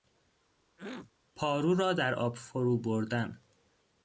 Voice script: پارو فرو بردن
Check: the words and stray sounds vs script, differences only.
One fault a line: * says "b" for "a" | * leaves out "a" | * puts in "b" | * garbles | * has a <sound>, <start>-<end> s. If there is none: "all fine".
* has a throat clearing, 0.8-1.1 s
* puts in "را در آب"